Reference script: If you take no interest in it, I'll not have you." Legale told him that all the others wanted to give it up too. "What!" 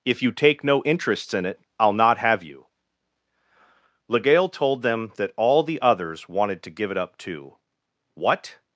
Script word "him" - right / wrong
wrong